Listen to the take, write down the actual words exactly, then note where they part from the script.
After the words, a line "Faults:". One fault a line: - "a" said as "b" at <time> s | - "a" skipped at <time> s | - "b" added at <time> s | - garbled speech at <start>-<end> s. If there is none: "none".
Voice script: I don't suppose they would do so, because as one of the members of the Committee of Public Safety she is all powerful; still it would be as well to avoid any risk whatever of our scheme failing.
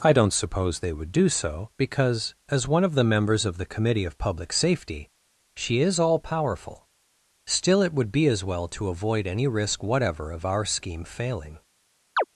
I don't suppose they would do so, because as one of the members of the Committee of Public Safety she is all powerful; still it would be as well to avoid any risk whatever of our scheme failing.
Faults:
none